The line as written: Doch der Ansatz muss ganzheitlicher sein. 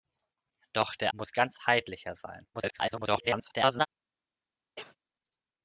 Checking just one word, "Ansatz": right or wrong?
wrong